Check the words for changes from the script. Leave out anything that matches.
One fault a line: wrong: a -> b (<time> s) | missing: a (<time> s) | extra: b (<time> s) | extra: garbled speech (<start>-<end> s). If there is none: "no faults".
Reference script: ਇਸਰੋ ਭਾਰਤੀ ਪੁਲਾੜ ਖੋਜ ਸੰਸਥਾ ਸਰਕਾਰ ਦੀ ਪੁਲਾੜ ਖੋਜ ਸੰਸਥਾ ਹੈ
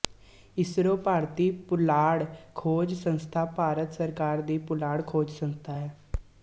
extra: ਭਾਰਤ (3.6 s)